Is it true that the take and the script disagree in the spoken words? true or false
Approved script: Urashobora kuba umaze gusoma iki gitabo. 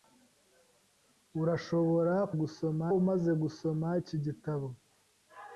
true